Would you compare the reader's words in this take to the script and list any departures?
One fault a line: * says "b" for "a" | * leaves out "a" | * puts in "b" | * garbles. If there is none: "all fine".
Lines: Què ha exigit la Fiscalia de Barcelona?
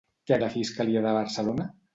* leaves out "exigit"